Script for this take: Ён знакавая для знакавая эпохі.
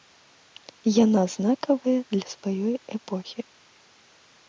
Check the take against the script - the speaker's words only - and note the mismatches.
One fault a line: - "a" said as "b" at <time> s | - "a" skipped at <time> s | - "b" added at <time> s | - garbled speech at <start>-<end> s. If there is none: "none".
- "Ён" said as "Яна" at 1.0 s
- "знакавая" said as "сваёй" at 2.4 s